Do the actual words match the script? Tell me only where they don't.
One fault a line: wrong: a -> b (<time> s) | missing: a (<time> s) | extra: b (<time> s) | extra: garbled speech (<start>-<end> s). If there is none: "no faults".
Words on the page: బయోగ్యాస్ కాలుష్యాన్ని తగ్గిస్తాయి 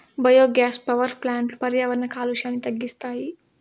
extra: పవర్ ప్లాంట్లు పర్యావరణ (0.8 s)